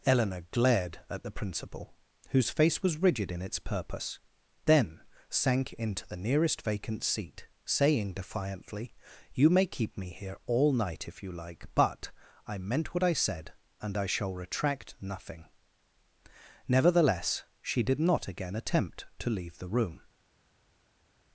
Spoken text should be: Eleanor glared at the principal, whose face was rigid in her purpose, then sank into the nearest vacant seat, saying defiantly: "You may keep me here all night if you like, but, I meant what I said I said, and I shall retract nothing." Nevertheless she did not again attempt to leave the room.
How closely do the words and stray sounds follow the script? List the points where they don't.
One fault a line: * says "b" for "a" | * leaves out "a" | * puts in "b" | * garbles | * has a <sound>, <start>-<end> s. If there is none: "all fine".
* says "its" for "her"
* leaves out "I said"